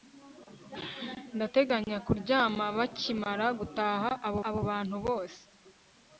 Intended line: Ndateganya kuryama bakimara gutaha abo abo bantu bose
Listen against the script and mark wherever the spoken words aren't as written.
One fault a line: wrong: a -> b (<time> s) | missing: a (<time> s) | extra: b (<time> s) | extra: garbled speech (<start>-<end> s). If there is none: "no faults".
no faults